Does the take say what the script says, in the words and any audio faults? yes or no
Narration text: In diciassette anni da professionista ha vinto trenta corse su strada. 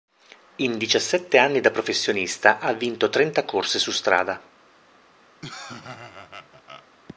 no